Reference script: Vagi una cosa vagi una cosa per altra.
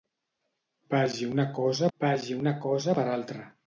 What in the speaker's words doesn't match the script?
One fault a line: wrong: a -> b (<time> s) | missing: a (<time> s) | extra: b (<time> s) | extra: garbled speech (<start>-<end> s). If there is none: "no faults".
no faults